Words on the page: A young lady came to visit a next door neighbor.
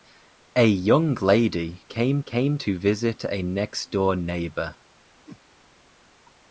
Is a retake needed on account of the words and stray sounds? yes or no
yes